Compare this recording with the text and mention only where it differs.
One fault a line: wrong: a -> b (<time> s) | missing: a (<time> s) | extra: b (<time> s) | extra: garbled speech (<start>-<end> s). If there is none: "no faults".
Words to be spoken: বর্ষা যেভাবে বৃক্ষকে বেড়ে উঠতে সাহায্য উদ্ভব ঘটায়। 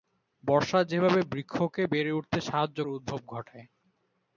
no faults